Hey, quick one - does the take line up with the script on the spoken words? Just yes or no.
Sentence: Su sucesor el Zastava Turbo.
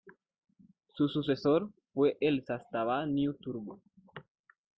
no